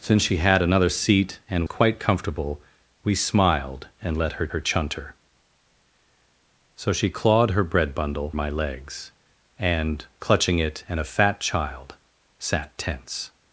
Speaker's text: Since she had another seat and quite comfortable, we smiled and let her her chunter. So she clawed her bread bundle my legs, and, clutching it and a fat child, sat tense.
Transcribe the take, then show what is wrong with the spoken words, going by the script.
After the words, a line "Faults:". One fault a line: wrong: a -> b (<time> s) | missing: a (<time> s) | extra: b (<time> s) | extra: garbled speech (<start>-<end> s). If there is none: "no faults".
Since she had another seat and quite comfortable, we smiled and let her her chunter. So she clawed her bread bundle my legs, and, clutching it and a fat child, sat tense.
Faults:
no faults